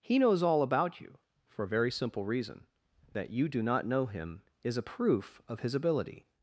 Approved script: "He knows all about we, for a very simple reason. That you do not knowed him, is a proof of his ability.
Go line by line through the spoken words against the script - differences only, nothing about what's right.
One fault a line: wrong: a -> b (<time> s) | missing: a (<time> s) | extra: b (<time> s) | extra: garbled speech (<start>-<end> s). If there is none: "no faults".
wrong: we -> you (1.0 s)
wrong: knowed -> know (3.9 s)